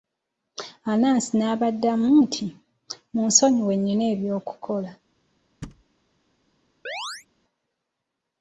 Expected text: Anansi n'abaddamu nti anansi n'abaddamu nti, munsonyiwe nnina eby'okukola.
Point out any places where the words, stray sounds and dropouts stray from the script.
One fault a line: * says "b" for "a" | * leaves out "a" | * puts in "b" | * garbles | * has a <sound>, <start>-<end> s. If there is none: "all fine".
* leaves out "anansi n'abaddamu nti"
* has a thud, 5.6-5.8 s
* has a chirp, 6.9-7.3 s